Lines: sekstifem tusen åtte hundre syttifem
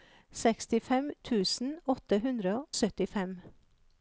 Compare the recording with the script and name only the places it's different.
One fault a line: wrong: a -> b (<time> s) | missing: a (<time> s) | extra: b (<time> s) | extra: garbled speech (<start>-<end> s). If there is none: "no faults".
no faults